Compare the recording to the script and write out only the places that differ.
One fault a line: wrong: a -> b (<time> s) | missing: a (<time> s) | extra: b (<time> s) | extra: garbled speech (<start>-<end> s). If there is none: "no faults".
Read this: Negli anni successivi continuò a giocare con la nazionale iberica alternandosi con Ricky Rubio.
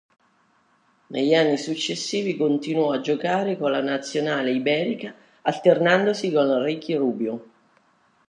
no faults